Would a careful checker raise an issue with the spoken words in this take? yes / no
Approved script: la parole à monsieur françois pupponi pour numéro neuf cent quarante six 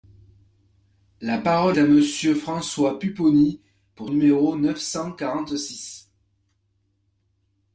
no